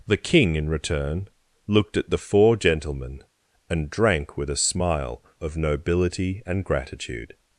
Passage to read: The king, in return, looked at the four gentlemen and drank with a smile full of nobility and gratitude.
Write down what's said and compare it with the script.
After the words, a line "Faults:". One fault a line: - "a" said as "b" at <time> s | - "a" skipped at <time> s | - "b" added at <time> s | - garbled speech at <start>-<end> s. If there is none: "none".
The king, in return, looked at the four gentlemen and drank with a smile of nobility and gratitude.
Faults:
- "full" skipped at 5.2 s